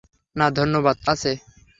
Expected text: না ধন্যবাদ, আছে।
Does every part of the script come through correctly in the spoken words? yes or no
yes